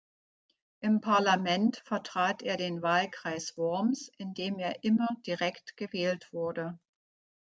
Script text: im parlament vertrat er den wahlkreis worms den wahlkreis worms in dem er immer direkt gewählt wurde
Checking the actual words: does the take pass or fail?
fail